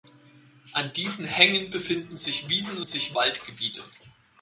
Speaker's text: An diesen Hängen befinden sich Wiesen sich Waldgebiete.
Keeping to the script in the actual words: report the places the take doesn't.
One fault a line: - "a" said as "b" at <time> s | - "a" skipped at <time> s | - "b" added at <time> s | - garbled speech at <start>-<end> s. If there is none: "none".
none